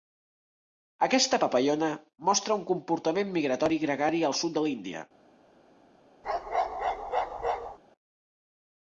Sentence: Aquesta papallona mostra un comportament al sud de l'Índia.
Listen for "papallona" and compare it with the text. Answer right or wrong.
right